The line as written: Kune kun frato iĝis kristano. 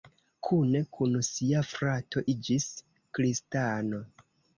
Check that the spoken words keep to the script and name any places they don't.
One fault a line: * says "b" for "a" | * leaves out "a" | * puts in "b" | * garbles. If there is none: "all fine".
* puts in "sia"